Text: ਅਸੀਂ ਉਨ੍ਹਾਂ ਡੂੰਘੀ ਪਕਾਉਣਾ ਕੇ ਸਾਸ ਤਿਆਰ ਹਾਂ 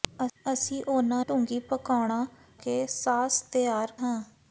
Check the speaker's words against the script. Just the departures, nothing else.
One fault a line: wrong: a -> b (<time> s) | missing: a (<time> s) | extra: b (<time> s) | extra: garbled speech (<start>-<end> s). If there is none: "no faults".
no faults